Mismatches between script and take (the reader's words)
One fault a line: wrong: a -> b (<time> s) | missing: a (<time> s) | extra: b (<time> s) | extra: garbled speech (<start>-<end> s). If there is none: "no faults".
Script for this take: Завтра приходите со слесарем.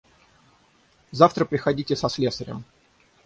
no faults